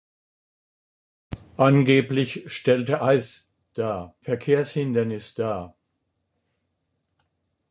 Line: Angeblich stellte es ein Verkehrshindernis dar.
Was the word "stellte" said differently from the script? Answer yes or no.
no